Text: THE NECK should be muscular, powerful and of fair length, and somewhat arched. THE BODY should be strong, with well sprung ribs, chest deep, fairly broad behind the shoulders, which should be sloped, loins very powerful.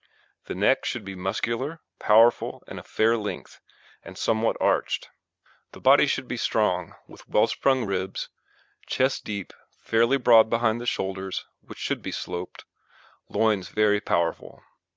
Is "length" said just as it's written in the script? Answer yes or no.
yes